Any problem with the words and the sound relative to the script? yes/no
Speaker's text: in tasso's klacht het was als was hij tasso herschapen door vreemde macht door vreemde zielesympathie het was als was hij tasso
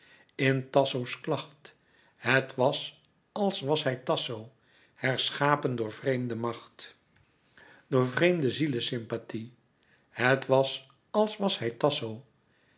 no